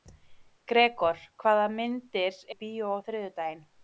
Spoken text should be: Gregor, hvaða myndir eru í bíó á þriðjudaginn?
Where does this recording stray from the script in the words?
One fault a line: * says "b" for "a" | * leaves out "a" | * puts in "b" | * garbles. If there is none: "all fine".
* leaves out "eru"